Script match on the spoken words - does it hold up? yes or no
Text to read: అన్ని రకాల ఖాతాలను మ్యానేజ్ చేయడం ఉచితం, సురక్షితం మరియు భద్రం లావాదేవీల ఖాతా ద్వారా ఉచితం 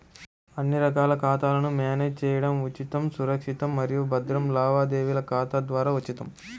yes